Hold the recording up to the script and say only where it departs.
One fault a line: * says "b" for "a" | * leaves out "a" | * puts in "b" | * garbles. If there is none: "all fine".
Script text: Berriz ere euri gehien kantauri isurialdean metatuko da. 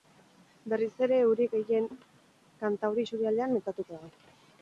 all fine